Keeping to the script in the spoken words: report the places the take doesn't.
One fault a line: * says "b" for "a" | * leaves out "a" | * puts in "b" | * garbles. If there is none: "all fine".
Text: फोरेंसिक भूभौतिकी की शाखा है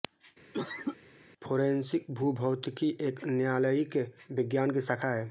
* puts in "एक न्यायालयिक विज्ञान"